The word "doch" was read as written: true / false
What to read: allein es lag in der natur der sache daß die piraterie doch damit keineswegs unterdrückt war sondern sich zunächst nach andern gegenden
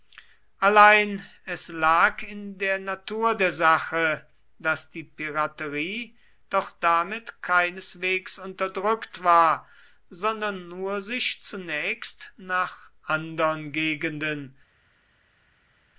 true